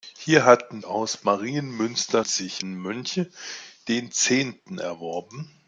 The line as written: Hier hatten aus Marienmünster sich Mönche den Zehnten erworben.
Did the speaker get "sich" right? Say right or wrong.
right